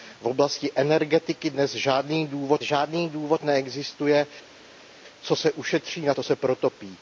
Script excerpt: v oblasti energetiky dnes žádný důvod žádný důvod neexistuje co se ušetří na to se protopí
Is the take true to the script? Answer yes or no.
yes